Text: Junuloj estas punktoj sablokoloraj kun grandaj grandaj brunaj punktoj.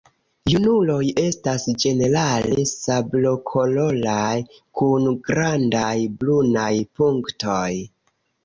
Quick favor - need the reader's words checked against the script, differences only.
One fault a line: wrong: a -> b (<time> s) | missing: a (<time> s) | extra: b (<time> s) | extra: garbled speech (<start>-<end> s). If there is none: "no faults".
wrong: punktoj -> ĝenerale (1.8 s)
missing: grandaj (6.0 s)